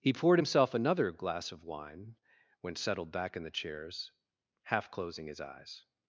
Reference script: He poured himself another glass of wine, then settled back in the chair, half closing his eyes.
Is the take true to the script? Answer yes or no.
no